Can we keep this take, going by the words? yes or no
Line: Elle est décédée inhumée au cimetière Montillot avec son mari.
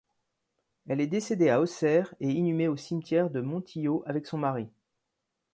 no